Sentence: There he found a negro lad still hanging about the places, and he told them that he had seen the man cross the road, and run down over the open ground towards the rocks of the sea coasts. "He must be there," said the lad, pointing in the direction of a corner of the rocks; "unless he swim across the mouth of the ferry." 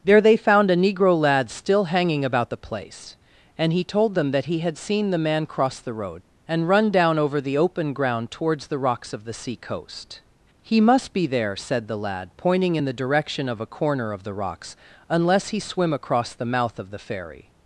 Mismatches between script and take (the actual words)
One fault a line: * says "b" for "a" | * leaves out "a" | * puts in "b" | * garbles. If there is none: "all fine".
* says "they" for "he"
* says "place" for "places"
* says "coast" for "coasts"